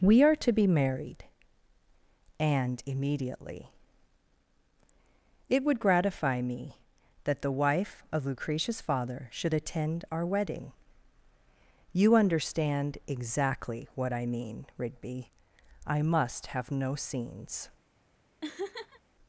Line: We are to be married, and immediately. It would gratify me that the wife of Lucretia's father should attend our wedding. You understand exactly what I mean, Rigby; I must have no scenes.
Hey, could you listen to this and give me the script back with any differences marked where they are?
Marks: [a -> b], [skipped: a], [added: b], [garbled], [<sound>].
We are to be married, and immediately. It would gratify me that the wife of Lucretia's father should attend our wedding. You understand exactly what I mean, Rigby; I must have no scenes. [laugh]